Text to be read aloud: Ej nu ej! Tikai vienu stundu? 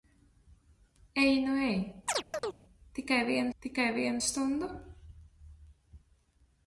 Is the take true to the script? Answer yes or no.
no